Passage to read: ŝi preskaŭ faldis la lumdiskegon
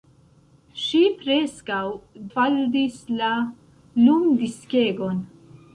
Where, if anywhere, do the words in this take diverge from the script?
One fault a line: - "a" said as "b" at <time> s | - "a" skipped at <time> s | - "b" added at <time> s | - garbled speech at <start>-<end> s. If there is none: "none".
none